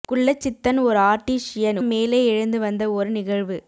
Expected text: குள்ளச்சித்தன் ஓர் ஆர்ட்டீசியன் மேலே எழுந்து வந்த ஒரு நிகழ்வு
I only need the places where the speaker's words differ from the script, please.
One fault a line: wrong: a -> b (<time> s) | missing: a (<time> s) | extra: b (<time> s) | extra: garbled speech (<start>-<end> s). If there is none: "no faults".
no faults